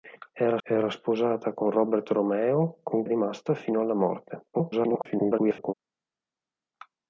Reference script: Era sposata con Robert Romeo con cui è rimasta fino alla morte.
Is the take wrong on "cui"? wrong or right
wrong